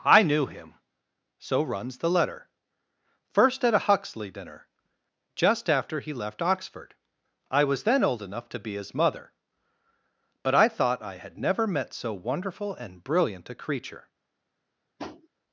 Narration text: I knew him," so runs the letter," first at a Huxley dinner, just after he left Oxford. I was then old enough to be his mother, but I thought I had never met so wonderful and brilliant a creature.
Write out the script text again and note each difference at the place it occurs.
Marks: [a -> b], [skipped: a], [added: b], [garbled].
I knew him," so runs the letter," first at a Huxley dinner, just after he left Oxford. I was then old enough to be his mother, but I thought I had never met so wonderful and brilliant a creature.